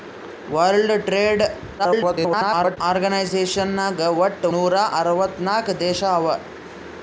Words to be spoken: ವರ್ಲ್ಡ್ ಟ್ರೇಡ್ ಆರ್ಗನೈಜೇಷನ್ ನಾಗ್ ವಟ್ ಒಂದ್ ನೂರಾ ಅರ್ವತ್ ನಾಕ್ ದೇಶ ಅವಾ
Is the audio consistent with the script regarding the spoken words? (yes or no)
no